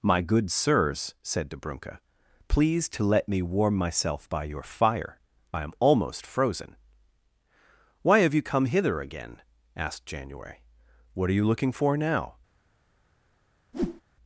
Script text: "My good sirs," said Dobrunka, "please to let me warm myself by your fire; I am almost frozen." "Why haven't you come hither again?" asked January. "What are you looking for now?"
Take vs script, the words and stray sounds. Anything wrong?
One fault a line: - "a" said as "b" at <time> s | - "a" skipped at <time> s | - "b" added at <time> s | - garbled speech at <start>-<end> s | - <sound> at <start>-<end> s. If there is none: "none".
- "haven't" said as "have" at 8.2 s
- whoosh at 13.7-14.0 s